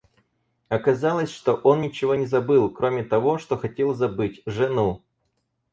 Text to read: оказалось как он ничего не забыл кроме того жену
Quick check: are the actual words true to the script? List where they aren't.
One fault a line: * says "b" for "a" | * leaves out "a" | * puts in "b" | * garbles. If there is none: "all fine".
* says "что" for "как"
* puts in "что хотел забыть"